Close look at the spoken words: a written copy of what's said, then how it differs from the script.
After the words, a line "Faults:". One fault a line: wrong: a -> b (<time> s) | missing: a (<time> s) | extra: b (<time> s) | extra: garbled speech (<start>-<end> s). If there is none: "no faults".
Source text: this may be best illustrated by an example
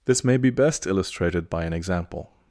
this may be best illustrated by an example
Faults:
no faults